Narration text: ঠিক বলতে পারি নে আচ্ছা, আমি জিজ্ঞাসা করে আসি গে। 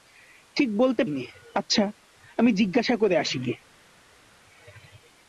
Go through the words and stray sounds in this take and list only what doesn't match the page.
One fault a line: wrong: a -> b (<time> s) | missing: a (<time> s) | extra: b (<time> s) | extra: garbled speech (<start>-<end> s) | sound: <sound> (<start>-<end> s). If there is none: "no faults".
missing: পারি (1.0 s)